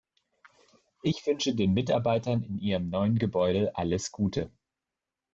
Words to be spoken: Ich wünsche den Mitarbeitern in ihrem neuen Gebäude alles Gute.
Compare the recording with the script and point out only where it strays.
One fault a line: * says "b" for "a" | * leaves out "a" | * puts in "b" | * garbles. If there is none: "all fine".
all fine